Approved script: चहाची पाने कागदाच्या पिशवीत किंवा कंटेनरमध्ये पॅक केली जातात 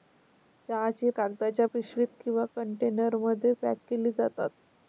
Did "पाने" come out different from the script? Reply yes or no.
yes